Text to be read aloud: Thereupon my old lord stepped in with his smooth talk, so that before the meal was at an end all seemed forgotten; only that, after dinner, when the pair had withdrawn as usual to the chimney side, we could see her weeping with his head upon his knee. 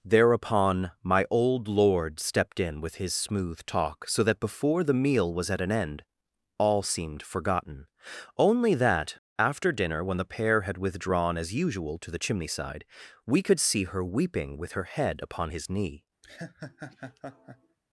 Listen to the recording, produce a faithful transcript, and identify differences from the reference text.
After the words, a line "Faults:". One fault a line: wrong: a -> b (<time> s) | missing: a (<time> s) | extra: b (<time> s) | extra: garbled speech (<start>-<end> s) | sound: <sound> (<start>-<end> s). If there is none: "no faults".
Thereupon my old lord stepped in with his smooth talk, so that before the meal was at an end all seemed forgotten; only that, after dinner, when the pair had withdrawn as usual to the chimney side, we could see her weeping with her head upon his knee.
Faults:
wrong: his -> her (14.7 s)
sound: laugh (16.2-17.8 s)